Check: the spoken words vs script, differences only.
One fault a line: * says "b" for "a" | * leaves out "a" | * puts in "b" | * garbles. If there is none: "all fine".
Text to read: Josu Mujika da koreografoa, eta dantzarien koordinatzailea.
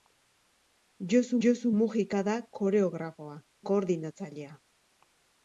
* puts in "josu"
* leaves out "eta dantzarien"